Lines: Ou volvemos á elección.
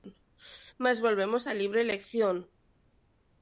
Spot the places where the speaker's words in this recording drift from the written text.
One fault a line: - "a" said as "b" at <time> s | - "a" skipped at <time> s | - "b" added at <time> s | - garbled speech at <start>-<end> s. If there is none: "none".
- "Ou" said as "Mais" at 0.8 s
- "libre" added at 1.6 s